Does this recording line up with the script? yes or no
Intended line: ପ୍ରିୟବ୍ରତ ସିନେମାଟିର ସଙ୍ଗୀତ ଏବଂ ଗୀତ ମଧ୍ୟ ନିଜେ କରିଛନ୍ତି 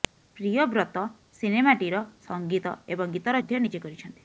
yes